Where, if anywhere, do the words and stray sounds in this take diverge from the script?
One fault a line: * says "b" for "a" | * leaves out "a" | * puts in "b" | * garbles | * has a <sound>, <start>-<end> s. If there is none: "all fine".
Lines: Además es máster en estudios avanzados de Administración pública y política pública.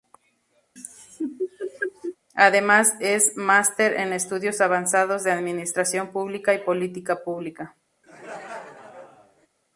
* has a laugh, 0.8-2.2 s
* has a laugh, 8.0-9.5 s